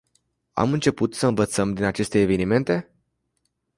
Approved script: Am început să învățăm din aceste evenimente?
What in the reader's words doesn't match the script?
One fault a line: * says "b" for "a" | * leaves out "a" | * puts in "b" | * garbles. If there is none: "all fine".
all fine